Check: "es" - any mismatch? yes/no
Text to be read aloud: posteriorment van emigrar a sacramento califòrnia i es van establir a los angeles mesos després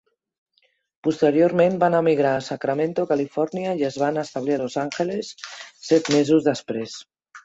no